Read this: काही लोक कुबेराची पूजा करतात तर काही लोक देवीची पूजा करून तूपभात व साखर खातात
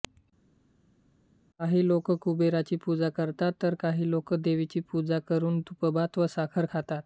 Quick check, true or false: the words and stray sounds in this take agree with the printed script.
true